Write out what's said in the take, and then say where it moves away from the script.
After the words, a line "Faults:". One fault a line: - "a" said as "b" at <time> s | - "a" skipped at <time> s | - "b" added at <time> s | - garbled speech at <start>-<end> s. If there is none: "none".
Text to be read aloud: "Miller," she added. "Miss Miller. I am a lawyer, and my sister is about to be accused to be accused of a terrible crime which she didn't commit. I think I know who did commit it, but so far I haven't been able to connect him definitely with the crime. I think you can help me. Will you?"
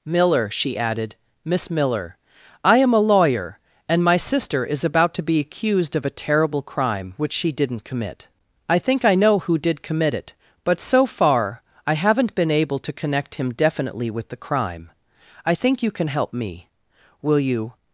"Miller," she added. "Miss Miller. I am a lawyer, and my sister is about to be accused of a terrible crime which she didn't commit. I think I know who did commit it, but so far I haven't been able to connect him definitely with the crime. I think you can help me. Will you?"
Faults:
- "to be accused" skipped at 6.0 s